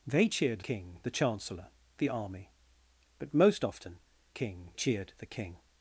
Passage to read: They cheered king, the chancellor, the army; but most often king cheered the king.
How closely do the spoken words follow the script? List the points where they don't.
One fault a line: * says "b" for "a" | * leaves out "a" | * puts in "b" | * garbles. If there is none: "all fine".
all fine